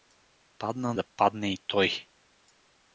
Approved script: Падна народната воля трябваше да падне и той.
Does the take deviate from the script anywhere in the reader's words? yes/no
yes